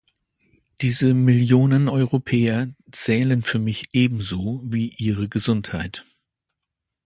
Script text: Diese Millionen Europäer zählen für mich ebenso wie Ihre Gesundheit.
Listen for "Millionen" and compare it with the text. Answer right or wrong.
right